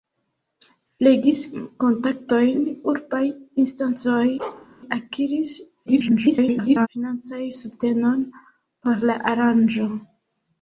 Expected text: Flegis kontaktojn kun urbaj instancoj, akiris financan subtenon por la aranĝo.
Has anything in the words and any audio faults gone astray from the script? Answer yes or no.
yes